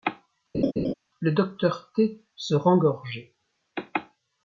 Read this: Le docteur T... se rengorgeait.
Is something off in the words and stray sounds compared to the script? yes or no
yes